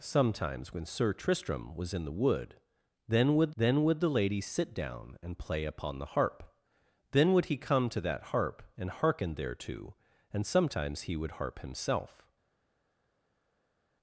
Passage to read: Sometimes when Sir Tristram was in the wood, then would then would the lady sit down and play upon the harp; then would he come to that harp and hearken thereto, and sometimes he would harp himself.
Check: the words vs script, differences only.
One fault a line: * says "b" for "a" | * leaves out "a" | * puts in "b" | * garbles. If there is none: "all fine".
all fine